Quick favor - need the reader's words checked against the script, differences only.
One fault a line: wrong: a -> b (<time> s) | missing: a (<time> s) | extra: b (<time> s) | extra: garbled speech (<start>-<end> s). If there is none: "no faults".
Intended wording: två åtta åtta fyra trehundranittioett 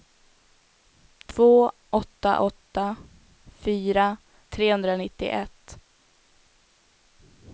no faults